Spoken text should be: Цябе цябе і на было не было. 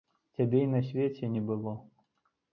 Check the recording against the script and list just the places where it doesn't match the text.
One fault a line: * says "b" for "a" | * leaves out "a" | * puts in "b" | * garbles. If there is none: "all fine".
* leaves out "цябе"
* says "свеце" for "было"